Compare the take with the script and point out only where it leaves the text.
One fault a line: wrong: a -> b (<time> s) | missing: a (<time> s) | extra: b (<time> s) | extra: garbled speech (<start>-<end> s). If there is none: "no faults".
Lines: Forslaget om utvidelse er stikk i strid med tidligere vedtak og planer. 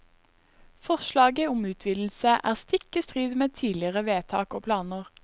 no faults